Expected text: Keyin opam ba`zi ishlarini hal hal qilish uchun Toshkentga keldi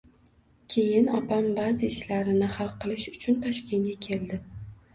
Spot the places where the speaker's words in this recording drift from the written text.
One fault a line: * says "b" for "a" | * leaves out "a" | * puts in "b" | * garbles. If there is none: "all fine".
* leaves out "hal"